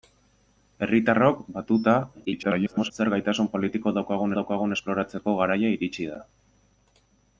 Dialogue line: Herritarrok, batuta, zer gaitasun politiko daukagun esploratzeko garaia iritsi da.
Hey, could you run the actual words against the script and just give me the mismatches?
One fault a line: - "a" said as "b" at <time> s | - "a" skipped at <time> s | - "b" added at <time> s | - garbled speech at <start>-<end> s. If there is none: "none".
- garbled speech at 2.2-2.9 s
- "daukagun" added at 4.4 s